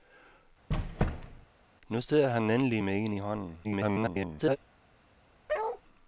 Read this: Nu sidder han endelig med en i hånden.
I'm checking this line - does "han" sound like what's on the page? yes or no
yes